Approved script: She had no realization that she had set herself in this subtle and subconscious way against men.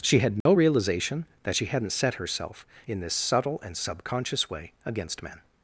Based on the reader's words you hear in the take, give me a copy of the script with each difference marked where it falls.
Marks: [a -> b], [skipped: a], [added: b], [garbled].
She had no realization that she [had -> hadn't] set herself in this subtle and subconscious way against men.